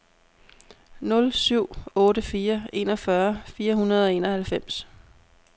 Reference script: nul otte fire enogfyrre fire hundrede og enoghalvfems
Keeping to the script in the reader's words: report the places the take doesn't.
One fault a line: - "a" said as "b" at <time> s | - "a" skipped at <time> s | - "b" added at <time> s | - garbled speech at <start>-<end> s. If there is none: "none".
- "syv" added at 1.3 s